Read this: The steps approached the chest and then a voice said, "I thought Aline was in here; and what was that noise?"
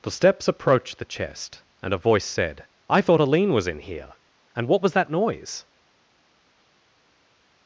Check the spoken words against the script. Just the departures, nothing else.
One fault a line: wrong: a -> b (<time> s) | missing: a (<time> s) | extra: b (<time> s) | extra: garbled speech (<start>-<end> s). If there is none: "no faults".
missing: then (1.9 s)